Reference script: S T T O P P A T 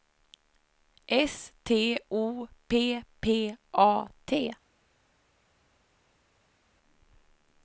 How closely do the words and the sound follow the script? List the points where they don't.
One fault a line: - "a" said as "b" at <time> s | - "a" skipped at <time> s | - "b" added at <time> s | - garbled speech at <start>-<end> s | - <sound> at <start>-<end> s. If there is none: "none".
- "T" skipped at 2.0 s